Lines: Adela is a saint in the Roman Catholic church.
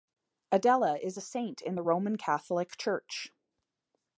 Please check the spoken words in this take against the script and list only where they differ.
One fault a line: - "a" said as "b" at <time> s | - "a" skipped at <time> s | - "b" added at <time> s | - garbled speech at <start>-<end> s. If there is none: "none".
none